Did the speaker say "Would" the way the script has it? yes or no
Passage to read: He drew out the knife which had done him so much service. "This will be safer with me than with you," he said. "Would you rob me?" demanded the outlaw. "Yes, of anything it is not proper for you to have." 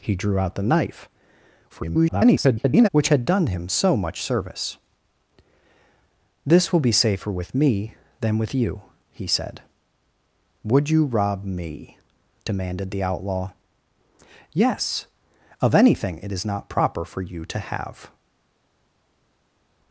yes